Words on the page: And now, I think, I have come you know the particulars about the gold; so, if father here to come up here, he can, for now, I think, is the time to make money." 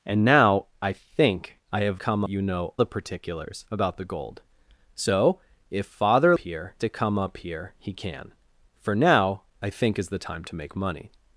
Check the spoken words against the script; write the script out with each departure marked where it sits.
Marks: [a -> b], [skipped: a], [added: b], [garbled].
And now, I think, I have come you know the particulars about the gold; so, if father here to come up here, he can, for now, I think, is the time to make money."